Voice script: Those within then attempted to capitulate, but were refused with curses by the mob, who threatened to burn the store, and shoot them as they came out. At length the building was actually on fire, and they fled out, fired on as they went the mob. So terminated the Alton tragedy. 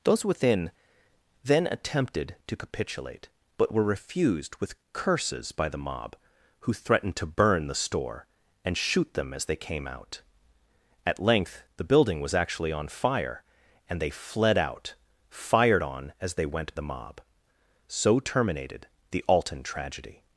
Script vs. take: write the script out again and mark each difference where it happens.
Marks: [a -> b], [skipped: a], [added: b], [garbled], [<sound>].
Those within then attempted to capitulate, but were refused with curses by the mob, who threatened to burn the store, and shoot them as they came out. At length the building was actually on fire, and they fled out, fired on as they went the mob. So terminated the Alton tragedy.